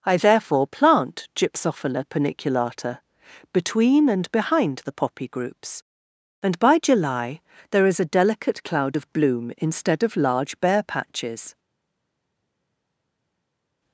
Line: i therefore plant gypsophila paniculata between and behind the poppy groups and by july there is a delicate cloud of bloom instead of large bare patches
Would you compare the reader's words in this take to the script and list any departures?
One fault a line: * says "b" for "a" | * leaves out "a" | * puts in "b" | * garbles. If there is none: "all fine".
all fine